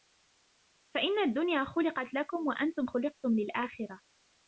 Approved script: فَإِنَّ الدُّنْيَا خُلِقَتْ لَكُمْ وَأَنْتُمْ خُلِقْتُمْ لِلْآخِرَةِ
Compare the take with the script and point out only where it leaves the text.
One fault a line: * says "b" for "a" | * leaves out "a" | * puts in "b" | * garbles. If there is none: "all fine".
all fine